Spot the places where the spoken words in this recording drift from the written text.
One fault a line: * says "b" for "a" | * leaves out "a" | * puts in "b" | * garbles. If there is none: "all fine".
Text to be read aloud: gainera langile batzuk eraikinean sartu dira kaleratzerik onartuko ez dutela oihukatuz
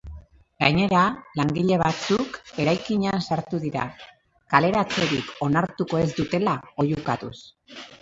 all fine